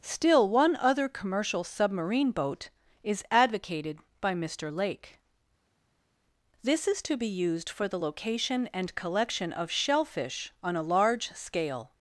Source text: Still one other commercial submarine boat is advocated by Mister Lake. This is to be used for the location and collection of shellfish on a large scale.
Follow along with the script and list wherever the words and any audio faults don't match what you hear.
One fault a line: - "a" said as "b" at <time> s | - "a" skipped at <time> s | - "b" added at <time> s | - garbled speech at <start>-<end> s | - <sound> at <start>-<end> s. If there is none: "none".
none